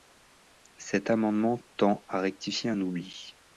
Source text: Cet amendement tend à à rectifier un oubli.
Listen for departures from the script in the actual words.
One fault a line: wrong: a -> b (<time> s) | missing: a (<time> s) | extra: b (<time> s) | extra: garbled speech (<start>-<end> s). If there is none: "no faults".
missing: à (2.2 s)